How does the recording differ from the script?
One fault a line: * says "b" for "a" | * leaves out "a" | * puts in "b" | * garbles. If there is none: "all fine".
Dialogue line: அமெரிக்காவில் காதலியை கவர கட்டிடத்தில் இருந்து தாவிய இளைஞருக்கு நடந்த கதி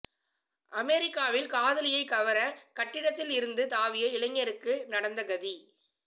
all fine